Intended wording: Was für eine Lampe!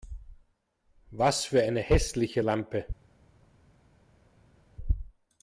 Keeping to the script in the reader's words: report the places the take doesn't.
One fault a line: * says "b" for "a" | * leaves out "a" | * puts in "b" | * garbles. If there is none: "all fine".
* puts in "hässliche"